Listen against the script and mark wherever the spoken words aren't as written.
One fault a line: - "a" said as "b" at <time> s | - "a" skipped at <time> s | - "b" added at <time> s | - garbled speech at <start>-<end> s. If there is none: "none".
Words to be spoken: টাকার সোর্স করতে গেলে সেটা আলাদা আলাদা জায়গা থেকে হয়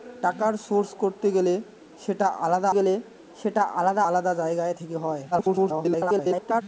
- "গেলে সেটা আলাদা" added at 2.7 s
- garbled speech at 5.3-6.6 s